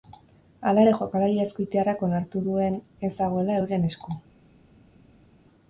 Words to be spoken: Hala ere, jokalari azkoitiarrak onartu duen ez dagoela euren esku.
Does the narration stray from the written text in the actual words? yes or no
no